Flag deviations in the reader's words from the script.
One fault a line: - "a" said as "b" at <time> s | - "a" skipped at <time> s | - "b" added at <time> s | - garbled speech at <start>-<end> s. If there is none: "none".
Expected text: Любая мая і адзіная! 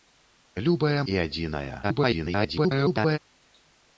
- "мая" skipped at 1.0 s
- garbled speech at 1.8-3.2 s